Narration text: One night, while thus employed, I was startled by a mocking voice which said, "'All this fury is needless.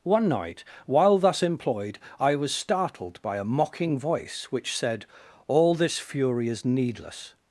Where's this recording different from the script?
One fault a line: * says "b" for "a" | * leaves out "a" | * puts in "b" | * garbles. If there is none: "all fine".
all fine